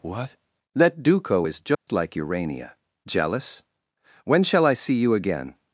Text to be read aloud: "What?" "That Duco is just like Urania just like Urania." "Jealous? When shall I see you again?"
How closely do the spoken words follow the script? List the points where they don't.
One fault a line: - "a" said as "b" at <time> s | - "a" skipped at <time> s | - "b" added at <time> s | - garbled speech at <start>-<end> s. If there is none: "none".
- "just like Urania" skipped at 2.8 s